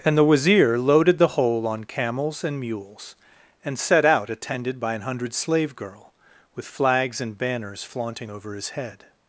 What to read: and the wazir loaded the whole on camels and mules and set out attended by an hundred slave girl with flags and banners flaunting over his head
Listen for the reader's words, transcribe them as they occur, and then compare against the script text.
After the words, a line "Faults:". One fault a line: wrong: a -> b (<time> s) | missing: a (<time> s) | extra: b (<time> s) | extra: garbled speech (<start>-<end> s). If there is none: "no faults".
and the wazir loaded the whole on camels and mules and set out attended by an hundred slave girl with flags and banners flaunting over his head
Faults:
no faults